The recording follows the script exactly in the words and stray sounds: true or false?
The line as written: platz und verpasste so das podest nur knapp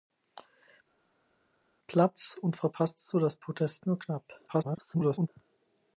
false